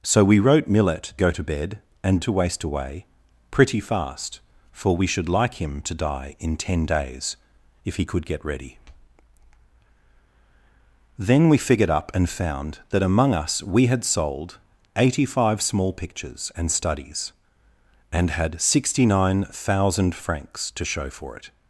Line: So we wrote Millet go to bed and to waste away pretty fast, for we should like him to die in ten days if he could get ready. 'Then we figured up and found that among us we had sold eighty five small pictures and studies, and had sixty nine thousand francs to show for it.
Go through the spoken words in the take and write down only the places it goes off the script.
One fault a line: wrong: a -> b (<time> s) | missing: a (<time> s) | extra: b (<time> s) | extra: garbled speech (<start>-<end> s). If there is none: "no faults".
no faults